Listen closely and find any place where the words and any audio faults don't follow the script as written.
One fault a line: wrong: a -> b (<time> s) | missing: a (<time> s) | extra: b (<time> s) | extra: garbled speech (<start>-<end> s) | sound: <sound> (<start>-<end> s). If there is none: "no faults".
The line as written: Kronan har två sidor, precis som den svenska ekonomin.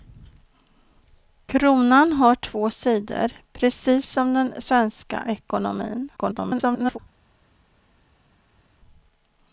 extra: garbled speech (6.2-7.0 s)